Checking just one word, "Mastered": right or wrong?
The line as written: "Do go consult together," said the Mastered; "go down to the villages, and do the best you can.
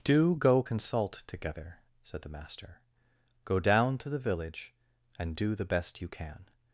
wrong